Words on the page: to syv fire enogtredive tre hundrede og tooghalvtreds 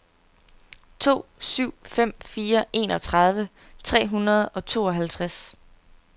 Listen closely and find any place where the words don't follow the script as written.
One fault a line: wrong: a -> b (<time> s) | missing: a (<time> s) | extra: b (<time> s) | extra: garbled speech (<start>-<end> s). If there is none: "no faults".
extra: fem (1.8 s)